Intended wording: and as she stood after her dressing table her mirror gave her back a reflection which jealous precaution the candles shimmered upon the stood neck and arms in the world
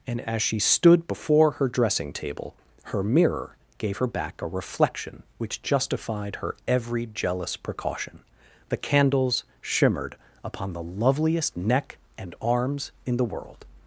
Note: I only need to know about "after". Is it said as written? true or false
false